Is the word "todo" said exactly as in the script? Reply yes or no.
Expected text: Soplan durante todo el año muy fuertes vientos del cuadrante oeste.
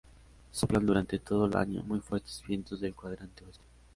yes